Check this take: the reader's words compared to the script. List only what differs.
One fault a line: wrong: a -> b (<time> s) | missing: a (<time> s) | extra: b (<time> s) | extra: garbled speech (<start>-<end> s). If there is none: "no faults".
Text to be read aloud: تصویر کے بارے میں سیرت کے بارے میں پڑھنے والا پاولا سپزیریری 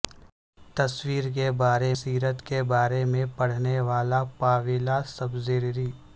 missing: میں (1.9 s)